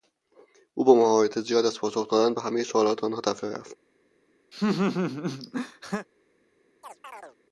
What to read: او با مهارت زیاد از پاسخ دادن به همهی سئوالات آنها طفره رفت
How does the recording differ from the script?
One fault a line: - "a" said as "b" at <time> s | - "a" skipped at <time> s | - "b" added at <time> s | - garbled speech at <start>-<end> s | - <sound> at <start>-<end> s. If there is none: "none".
- laugh at 4.5-6.1 s
- chirp at 6.8-7.4 s